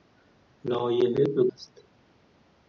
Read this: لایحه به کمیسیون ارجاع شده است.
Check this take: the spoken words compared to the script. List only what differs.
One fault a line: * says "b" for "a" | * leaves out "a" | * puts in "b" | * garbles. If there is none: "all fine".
* leaves out "کمیسیون ارجاع شده"